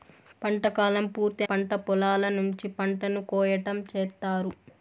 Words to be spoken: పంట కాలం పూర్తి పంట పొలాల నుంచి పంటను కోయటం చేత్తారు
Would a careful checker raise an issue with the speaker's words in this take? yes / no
no